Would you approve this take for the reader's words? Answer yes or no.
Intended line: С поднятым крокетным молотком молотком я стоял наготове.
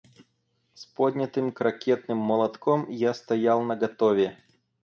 no